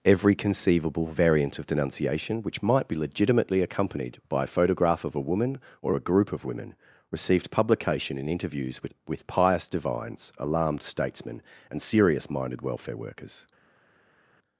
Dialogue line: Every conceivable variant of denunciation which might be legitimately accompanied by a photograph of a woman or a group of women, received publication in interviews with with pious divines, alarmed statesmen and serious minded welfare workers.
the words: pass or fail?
pass